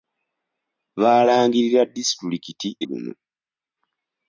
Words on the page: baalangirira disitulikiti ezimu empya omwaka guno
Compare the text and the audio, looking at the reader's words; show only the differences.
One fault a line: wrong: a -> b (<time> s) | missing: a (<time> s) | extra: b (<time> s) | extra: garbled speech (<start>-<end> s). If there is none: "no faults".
missing: ezimu empya omwaka (2.7 s)